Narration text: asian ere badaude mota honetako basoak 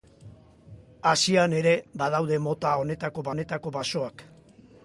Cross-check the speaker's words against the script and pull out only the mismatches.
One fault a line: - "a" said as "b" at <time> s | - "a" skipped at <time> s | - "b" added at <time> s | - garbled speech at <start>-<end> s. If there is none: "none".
- "honetako" added at 3.3 s